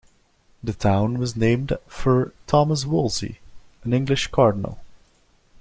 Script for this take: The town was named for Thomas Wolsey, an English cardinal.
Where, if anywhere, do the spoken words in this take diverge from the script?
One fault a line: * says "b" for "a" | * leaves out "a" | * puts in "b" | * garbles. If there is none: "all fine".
all fine